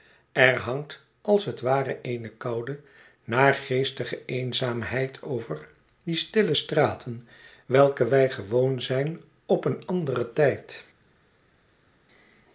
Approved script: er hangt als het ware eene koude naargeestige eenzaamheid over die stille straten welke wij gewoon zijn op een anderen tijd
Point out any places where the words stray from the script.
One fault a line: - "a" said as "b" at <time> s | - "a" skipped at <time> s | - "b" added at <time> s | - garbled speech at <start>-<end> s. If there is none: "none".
none